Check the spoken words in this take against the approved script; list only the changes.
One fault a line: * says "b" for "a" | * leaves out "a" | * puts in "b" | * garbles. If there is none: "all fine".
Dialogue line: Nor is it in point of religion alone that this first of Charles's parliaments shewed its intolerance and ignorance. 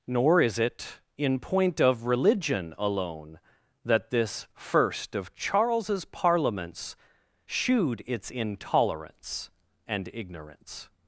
all fine